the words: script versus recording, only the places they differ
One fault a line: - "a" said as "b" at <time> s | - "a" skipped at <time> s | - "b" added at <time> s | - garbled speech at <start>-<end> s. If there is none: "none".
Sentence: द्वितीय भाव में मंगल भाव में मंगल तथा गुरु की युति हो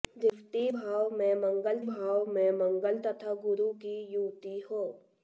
none